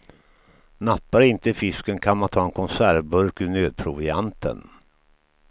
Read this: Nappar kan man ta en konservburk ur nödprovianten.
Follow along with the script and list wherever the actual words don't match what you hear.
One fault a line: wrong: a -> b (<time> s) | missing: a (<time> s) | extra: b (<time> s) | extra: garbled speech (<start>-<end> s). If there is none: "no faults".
extra: inte fisken (1.2 s)